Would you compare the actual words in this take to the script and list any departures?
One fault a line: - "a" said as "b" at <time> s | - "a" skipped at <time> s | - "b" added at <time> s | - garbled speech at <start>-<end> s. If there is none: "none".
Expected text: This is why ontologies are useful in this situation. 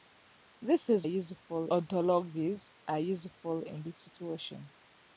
- "why" said as "useful" at 1.1 s